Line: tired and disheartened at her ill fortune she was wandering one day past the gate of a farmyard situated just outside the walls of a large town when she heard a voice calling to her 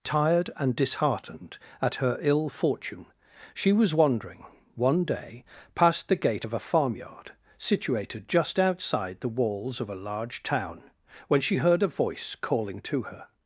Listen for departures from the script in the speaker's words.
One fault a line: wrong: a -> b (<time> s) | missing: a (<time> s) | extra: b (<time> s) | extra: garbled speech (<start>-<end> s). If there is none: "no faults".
no faults